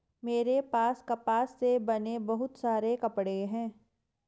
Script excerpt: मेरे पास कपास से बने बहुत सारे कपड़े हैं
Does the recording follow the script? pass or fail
pass